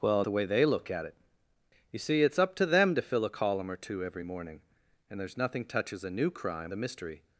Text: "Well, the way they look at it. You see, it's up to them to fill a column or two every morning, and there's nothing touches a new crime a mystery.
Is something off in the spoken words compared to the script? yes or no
no